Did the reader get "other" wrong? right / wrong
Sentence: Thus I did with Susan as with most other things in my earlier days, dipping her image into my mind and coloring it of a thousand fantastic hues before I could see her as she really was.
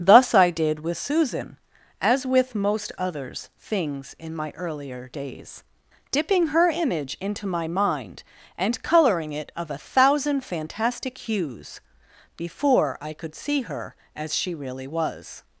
wrong